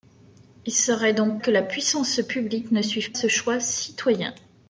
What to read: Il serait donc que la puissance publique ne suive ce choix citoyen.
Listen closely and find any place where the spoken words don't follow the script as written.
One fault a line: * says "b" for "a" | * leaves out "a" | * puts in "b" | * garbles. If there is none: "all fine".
all fine